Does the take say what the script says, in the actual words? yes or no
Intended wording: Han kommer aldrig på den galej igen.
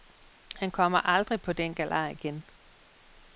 yes